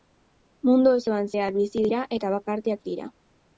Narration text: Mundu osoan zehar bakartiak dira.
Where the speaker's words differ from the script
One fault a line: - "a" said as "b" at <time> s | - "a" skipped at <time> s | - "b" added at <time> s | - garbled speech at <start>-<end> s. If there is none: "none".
- "bizi dira eta" added at 1.6 s